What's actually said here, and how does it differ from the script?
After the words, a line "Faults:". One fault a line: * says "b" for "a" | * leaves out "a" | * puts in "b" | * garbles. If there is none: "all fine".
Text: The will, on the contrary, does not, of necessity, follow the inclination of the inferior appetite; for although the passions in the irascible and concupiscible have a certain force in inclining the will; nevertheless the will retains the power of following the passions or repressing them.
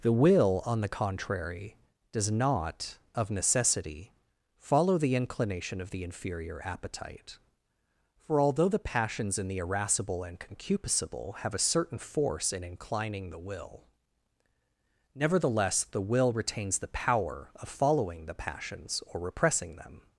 The will, on the contrary, does not, of necessity, follow the inclination of the inferior appetite; for although the passions in the irascible and concupiscible have a certain force in inclining the will; nevertheless the will retains the power of following the passions or repressing them.
Faults:
all fine